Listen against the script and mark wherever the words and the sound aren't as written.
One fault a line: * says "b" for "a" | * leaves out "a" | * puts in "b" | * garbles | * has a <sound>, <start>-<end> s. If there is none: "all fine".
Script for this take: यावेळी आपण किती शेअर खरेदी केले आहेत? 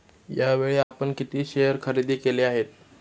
* has a dropout, 0.8-0.9 s